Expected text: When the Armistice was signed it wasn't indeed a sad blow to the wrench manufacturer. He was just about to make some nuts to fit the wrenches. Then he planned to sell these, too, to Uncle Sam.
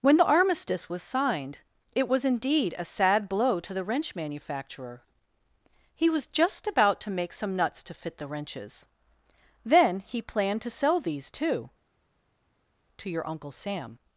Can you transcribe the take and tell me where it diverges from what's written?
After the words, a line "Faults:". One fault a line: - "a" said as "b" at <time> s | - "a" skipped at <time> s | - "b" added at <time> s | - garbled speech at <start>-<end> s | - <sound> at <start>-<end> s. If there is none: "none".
When the Armistice was signed it was indeed a sad blow to the wrench manufacturer. He was just about to make some nuts to fit the wrenches. Then he planned to sell these, too, to your Uncle Sam.
Faults:
- "wasn't" said as "was" at 2.1 s
- "your" added at 13.1 s